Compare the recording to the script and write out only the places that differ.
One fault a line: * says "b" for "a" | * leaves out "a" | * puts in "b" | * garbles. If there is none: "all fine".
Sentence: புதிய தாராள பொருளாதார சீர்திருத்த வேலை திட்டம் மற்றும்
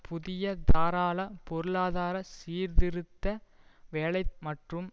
* leaves out "திட்டம்"